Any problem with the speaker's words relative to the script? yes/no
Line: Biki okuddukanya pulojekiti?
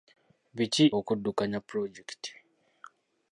no